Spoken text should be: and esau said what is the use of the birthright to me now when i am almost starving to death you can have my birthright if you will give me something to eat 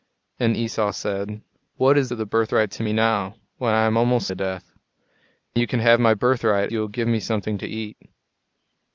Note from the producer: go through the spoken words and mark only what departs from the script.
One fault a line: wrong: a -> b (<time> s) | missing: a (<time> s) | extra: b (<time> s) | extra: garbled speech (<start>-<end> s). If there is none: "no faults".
missing: the use (2.1 s)
missing: starving (4.3 s)
missing: if (6.7 s)